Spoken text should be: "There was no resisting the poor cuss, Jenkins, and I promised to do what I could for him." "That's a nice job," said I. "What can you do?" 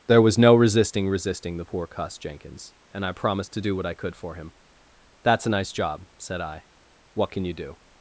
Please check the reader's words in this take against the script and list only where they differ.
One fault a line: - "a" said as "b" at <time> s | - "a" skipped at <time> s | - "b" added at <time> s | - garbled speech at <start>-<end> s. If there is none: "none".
- "resisting" added at 1.1 s